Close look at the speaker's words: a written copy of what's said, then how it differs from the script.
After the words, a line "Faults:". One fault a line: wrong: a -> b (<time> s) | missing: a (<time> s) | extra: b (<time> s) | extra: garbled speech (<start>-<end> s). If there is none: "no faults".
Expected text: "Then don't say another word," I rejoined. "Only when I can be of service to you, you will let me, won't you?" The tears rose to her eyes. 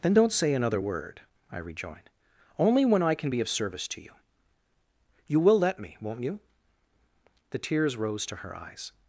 "Then don't say another word," I rejoined. "Only when I can be of service to you, you will let me, won't you?" The tears rose to her eyes.
Faults:
no faults